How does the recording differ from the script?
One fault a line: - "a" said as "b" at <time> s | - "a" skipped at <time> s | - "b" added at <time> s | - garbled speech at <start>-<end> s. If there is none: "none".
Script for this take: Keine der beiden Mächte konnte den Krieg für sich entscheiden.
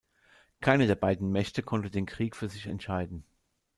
none